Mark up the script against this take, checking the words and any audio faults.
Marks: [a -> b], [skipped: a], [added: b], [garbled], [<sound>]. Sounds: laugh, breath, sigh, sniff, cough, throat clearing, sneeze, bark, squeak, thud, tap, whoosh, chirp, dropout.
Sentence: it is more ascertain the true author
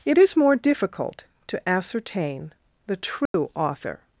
it is more [added: difficult to] ascertain the true [dropout] author